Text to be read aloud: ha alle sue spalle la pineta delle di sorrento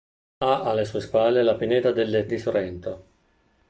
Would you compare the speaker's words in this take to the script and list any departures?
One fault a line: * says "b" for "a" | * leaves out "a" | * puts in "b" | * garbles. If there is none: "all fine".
all fine